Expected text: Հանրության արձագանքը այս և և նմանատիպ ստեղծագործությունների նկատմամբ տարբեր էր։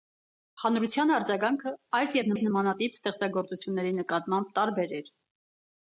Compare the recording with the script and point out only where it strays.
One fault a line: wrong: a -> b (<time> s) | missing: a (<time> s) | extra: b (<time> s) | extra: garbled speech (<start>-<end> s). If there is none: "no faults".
no faults